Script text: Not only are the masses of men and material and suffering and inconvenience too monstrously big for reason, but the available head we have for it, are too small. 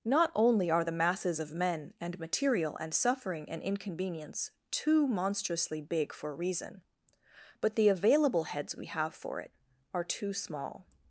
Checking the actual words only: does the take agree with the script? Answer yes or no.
no